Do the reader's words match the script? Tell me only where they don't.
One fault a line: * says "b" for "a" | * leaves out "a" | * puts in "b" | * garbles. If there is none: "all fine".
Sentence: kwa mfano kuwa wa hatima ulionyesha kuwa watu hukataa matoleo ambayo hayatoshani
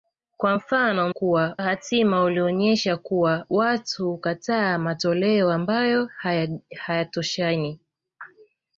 all fine